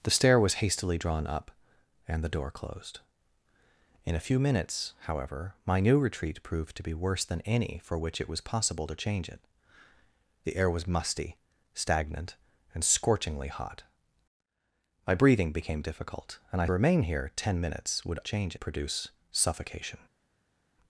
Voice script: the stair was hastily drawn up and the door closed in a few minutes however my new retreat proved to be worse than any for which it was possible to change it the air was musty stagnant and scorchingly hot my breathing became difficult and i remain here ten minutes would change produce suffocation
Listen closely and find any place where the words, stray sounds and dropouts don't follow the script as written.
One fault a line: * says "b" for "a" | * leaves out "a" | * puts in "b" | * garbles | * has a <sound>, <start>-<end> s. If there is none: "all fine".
all fine